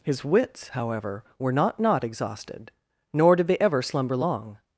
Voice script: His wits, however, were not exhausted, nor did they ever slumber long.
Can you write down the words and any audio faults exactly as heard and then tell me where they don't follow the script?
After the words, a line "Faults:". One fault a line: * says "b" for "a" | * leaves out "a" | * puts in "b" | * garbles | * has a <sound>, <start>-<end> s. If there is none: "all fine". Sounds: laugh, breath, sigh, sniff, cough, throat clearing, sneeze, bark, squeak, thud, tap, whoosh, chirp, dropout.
His wits, however, were not not exhausted, nor did they ever slumber long.
Faults:
* puts in "not"